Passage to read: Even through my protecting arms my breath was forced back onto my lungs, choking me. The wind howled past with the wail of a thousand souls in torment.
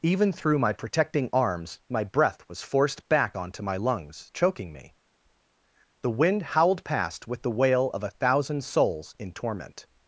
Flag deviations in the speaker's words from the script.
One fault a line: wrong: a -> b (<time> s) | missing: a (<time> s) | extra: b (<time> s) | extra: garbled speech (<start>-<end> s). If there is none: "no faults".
no faults